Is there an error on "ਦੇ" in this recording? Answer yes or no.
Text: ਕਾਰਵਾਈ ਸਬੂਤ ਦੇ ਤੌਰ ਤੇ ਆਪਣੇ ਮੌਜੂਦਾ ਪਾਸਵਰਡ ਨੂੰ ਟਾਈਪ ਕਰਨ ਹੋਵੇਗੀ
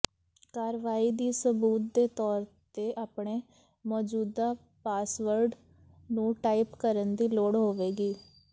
no